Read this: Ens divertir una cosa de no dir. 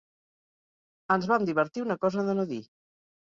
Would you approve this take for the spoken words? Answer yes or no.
no